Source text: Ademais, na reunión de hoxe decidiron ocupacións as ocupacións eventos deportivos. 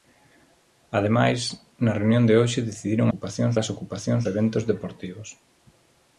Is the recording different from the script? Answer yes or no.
no